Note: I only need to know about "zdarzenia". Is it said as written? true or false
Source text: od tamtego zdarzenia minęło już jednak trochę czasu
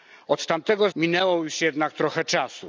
false